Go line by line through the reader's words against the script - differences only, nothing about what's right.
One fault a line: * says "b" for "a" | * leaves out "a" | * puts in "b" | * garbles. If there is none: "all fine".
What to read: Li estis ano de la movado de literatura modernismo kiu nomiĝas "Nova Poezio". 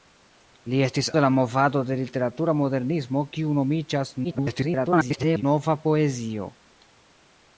* leaves out "ano"
* garbles